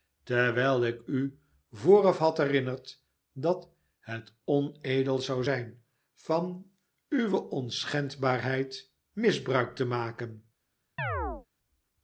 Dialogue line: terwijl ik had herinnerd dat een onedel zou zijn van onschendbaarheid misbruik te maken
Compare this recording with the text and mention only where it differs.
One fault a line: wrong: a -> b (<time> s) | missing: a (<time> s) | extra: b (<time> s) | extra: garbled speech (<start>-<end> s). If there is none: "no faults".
extra: u vooraf (1.0 s)
wrong: een -> het (4.0 s)
extra: uwe (7.1 s)